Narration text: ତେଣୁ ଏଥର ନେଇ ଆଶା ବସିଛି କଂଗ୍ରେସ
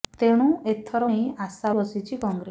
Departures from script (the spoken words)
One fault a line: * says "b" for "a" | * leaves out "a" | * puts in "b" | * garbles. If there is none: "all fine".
all fine